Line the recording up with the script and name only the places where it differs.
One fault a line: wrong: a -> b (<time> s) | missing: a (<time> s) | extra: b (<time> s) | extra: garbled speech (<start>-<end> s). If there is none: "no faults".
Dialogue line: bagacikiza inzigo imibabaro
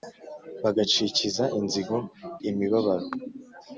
no faults